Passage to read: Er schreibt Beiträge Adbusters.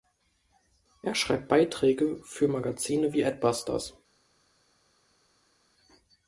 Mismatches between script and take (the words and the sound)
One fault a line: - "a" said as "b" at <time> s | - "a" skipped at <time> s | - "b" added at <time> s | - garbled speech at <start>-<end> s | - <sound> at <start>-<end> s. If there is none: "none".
- "für Magazine wie" added at 2.2 s